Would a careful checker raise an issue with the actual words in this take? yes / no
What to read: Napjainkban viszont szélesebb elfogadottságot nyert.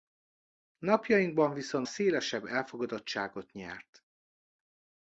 no